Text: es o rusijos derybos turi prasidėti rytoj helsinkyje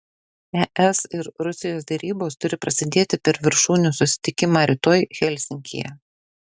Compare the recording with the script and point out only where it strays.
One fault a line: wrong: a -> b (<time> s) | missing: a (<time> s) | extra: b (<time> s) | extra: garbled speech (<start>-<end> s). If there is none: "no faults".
wrong: o -> ir (1.2 s)
extra: per viršūnių susitikimą (3.3 s)